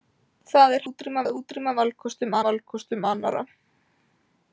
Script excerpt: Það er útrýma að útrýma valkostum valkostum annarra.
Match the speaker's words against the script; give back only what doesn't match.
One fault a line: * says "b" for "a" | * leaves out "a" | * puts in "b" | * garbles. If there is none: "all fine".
all fine